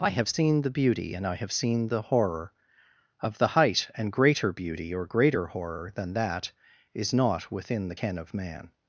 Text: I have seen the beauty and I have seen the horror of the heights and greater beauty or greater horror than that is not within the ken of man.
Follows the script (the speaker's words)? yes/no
no